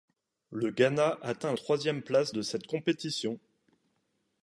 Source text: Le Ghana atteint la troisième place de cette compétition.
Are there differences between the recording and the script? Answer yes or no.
yes